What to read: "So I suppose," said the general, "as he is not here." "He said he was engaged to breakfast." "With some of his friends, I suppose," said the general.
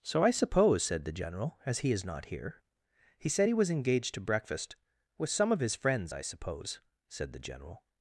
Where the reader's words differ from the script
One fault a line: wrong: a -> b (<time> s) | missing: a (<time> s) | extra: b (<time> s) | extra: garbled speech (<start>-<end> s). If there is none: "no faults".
no faults